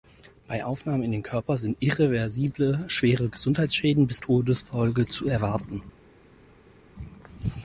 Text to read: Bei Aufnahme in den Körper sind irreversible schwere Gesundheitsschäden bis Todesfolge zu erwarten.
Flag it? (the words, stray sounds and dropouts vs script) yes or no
no